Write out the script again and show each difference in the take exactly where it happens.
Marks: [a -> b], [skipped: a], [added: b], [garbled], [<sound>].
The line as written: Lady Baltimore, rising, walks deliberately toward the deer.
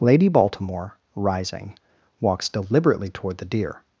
Lady Baltimore, rising, walks deliberately toward the deer.